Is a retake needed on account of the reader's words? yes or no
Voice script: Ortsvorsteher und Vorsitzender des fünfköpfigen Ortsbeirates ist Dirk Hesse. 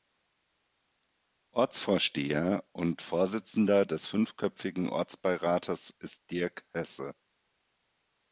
no